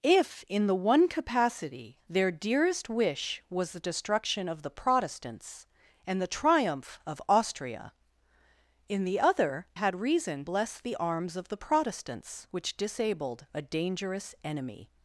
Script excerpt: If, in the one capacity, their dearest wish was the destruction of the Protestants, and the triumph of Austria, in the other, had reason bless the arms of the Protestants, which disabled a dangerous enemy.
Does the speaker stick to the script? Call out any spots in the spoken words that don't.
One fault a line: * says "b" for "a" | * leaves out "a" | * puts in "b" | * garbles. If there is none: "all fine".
all fine